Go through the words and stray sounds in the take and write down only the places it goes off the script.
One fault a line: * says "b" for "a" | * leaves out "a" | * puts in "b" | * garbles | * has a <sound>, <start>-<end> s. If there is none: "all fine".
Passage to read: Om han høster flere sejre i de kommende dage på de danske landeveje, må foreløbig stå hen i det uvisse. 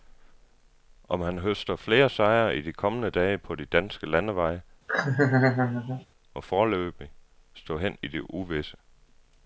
* has a laugh, 4.9-6.1 s